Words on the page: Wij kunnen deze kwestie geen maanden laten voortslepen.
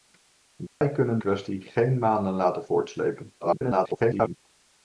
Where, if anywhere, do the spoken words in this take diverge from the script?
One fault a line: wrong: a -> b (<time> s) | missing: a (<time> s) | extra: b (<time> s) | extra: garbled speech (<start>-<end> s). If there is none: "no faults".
missing: deze (1.2 s)
extra: garbled speech (3.4-4.4 s)